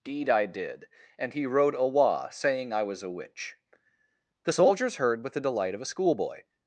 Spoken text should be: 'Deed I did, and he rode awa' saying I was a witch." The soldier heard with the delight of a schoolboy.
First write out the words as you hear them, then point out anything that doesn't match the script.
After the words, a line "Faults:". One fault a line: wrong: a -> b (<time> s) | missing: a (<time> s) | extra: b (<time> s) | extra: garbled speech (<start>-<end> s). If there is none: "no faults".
'Deed I did, and he rode awa' saying I was a witch." The soldiers heard with the delight of a schoolboy.
Faults:
wrong: soldier -> soldiers (4.5 s)